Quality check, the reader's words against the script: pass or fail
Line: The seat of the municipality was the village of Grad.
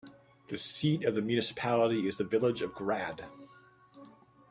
fail